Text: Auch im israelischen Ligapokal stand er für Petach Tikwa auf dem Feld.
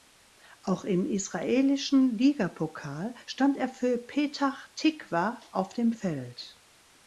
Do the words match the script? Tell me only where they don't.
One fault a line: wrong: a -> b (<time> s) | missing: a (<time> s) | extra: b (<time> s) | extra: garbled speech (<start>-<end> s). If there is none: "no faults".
no faults